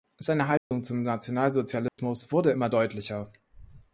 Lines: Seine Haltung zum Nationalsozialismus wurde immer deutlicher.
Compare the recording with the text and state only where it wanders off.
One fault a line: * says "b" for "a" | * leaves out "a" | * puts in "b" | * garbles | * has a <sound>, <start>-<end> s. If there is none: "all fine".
* has a dropout, 0.6-0.7 s
* has a dropout, 1.9-2.0 s